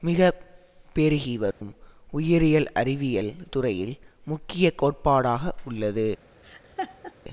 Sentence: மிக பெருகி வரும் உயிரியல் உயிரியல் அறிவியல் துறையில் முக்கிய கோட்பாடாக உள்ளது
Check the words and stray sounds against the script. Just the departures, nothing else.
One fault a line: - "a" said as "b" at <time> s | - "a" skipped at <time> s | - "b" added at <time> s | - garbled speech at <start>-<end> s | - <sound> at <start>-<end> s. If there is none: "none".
- dropout at 1.5-1.6 s
- "உயிரியல்" skipped at 2.7 s
- laugh at 6.4-7.1 s